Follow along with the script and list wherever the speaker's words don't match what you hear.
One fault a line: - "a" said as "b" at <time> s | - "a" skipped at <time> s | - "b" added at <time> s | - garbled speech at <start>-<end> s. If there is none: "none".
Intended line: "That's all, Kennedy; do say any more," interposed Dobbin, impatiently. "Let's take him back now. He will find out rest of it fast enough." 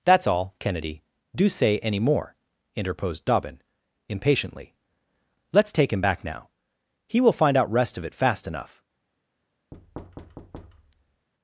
none